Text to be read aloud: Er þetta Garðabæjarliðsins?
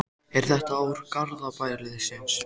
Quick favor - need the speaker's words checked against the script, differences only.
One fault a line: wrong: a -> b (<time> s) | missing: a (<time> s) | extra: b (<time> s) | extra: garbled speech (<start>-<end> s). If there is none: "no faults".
extra: ár (0.8 s)